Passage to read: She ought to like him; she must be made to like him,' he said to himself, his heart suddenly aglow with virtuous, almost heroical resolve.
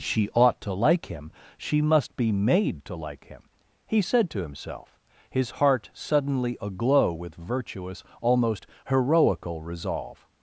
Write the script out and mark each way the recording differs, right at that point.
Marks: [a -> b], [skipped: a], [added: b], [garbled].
She ought to like him; she must be made to like him,' he said to himself, his heart suddenly aglow with virtuous, almost heroical resolve.